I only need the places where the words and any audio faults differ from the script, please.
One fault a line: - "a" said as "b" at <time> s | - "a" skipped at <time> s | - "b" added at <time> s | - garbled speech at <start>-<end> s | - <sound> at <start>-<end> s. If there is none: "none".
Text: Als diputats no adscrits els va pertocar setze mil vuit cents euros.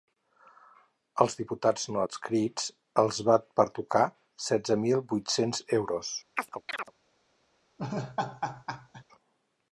- chirp at 6.3-6.9 s
- laugh at 7.8-9.0 s